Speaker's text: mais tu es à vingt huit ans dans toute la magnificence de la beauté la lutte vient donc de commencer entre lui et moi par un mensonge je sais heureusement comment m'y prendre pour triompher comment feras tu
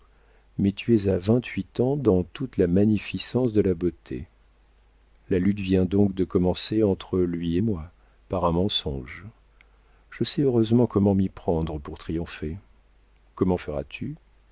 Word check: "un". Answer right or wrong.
right